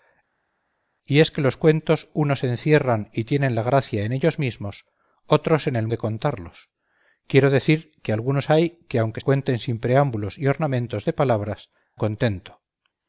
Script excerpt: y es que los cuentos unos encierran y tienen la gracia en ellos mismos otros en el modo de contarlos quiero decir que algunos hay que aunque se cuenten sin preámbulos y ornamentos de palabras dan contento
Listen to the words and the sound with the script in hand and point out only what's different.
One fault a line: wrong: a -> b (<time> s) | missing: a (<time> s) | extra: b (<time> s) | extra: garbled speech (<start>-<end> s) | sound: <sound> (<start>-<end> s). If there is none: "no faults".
missing: modo (5.9 s)
missing: se (9.2 s)
missing: dan (11.7 s)